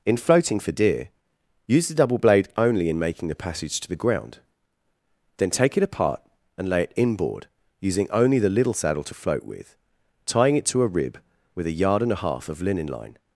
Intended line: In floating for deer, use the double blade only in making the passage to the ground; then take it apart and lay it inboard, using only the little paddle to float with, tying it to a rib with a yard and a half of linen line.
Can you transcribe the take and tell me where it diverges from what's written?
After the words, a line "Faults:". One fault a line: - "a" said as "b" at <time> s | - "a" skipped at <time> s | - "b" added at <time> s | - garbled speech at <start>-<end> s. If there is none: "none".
In floating for deer, use the double blade only in making the passage to the ground; then take it apart and lay it inboard, using only the little saddle to float with, tying it to a rib with a yard and a half of linen line.
Faults:
- "paddle" said as "saddle" at 8.7 s